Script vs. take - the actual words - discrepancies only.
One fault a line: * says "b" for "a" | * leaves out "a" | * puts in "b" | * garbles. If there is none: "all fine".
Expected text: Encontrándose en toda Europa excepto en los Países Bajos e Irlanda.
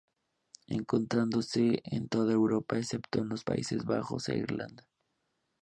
all fine